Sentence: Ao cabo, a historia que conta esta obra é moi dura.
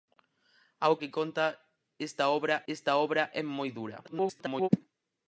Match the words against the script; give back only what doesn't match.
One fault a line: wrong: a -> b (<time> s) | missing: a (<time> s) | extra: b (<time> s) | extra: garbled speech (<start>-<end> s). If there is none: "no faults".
wrong: cabo a historia que conta -> que conta esta obra (1.0 s)
extra: garbled speech (4.0-4.7 s)